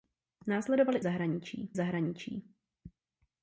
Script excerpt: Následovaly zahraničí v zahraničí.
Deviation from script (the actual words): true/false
false